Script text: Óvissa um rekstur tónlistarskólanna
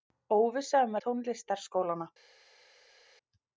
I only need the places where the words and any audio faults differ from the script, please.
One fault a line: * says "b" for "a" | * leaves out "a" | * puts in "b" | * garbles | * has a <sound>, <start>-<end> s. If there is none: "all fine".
* leaves out "rekstur"